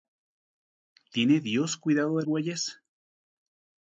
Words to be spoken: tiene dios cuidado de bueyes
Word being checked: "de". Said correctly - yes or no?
yes